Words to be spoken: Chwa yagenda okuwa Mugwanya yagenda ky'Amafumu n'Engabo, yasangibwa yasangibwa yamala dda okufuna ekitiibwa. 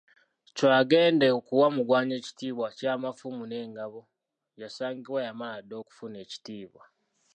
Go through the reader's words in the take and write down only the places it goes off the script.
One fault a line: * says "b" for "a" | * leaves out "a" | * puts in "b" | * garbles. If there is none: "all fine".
* says "ekitiibwa" for "yagenda"
* leaves out "yasangibwa"